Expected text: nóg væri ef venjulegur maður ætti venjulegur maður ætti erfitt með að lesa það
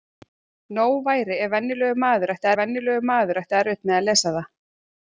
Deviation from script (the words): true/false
false